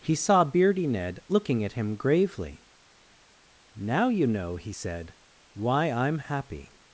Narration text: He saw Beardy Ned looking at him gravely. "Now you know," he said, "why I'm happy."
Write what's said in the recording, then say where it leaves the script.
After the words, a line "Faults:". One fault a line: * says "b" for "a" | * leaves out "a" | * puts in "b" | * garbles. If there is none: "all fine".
He saw Beardy Ned looking at him gravely. "Now you know," he said, "why I'm happy."
Faults:
all fine